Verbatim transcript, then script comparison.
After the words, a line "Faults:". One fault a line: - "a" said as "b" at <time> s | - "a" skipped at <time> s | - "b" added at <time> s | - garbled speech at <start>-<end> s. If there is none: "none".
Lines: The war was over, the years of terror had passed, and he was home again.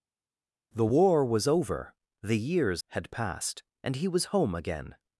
The war was over, the years had passed, and he was home again.
Faults:
- "of terror" skipped at 2.8 s